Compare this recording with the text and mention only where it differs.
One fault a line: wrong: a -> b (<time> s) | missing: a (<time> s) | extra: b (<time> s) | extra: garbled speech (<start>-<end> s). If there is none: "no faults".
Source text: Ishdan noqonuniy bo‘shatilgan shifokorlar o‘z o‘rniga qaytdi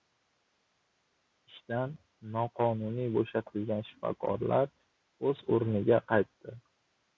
no faults